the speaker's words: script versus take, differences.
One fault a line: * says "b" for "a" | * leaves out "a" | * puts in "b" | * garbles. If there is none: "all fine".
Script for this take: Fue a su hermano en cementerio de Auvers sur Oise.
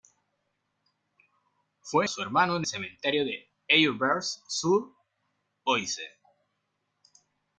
all fine